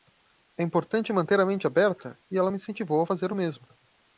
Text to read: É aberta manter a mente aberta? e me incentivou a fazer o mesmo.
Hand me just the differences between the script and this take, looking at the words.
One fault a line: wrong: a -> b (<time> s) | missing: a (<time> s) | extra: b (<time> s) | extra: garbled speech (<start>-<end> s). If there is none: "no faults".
wrong: aberta -> importante (0.6 s)
extra: ela (2.4 s)